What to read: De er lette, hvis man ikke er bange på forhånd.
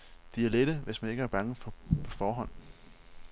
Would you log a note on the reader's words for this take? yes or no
no